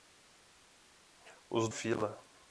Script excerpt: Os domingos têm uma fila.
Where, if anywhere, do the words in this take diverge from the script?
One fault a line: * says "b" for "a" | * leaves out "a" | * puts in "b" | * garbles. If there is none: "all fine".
* leaves out "domingos têm uma"